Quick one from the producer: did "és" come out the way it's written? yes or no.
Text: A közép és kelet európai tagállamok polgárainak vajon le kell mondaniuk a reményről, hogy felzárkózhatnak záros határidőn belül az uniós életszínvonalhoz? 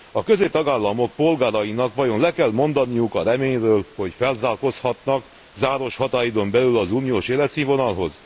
no